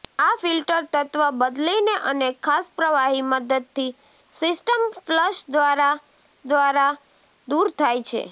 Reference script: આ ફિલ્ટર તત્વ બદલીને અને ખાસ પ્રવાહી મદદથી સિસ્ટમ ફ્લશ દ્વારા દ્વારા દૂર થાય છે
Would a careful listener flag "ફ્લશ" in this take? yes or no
no